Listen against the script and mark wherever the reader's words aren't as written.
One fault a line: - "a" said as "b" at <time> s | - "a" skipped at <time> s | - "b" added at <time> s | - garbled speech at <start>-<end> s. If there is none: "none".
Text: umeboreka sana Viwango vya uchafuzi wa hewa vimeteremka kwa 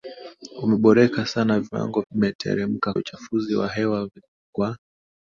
- "vya" said as "vimeteremka" at 2.1 s
- "vimeteremka" skipped at 4.1 s